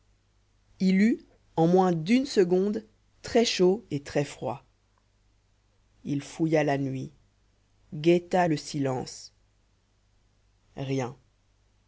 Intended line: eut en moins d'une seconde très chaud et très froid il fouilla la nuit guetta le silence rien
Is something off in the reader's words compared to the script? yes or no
no